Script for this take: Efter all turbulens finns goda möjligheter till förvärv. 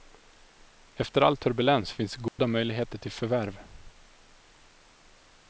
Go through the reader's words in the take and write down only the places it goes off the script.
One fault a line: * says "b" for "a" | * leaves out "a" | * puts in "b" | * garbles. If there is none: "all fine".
all fine